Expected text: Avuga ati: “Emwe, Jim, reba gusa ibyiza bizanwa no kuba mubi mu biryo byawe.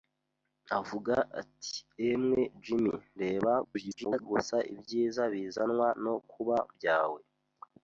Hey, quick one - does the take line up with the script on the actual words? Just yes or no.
no